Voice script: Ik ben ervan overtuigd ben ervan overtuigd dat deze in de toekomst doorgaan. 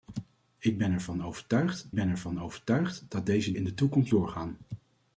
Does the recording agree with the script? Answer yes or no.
yes